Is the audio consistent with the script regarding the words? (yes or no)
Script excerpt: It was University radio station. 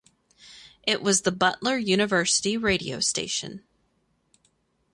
no